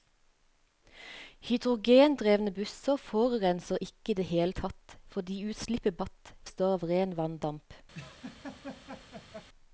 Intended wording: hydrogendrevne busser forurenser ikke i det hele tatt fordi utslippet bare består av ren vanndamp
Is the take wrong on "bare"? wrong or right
wrong